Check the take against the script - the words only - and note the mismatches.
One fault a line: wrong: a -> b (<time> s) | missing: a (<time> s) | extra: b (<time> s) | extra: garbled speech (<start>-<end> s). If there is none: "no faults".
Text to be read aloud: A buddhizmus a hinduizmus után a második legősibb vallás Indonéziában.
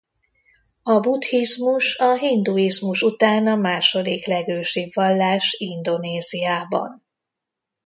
no faults